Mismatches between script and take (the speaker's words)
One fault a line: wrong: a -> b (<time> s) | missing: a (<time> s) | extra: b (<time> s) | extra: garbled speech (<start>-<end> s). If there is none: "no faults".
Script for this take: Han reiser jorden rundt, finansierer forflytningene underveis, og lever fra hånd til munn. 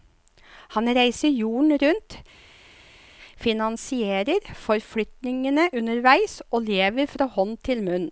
no faults